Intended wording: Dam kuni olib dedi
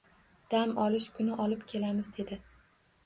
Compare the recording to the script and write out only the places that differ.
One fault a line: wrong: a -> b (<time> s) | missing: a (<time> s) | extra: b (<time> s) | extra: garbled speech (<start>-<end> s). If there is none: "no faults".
extra: olish (0.8 s)
extra: kelamiz (1.7 s)